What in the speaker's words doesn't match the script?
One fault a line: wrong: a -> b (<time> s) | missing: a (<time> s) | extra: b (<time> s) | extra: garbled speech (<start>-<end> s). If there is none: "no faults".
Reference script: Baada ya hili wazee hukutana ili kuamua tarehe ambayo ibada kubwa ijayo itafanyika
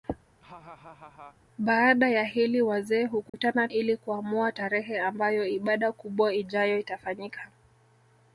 no faults